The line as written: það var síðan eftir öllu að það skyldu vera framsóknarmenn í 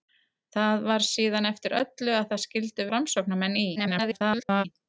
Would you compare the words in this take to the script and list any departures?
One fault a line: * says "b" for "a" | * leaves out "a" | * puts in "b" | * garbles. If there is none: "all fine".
* leaves out "vera"
* garbles